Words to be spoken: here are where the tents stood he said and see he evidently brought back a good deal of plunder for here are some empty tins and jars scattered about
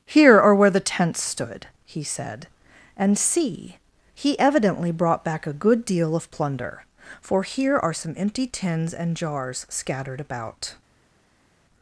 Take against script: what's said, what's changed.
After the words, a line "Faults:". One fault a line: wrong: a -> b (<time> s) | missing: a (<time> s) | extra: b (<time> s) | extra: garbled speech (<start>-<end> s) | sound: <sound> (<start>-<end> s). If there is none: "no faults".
here are where the tents stood he said and see he evidently brought back a good deal of plunder for here are some empty tins and jars scattered about
Faults:
no faults